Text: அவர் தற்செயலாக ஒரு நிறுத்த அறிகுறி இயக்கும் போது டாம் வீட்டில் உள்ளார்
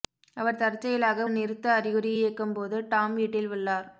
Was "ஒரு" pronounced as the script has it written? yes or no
no